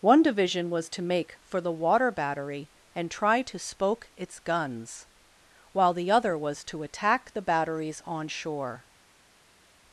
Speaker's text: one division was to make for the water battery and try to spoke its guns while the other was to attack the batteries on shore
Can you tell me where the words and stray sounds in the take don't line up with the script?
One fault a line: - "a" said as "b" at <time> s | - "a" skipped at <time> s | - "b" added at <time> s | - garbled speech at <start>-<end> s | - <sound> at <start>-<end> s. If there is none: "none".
none